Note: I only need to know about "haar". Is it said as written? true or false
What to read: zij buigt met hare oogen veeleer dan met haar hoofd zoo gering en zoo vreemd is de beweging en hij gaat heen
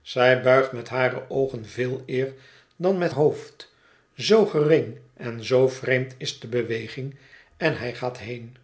false